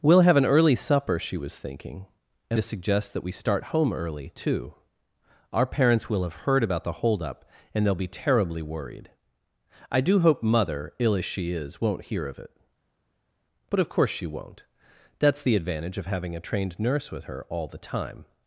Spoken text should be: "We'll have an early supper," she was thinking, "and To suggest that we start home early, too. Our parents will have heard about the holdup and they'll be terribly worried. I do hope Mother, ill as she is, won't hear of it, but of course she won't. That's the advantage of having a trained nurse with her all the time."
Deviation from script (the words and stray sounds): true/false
false